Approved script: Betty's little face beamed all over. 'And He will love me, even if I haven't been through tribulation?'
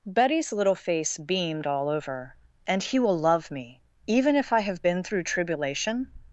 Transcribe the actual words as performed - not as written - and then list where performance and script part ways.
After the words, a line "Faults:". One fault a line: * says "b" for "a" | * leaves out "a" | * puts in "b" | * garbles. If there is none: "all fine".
Betty's little face beamed all over. 'And He will love me, even if I have been through tribulation?'
Faults:
* says "have" for "haven't"